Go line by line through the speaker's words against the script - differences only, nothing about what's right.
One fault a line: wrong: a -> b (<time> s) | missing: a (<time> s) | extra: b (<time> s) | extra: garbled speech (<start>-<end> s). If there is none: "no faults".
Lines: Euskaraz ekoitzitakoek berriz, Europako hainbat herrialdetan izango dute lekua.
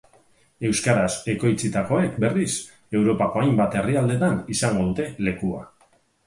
no faults